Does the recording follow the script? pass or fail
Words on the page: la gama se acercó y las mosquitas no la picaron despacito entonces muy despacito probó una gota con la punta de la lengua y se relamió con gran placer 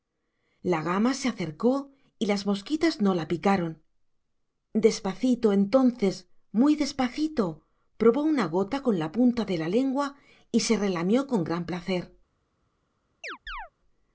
pass